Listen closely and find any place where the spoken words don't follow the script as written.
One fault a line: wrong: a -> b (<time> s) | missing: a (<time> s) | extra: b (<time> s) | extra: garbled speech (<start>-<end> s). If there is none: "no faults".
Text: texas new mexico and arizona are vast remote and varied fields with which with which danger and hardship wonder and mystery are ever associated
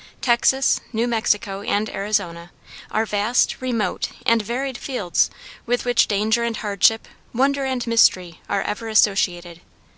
missing: with which (6.1 s)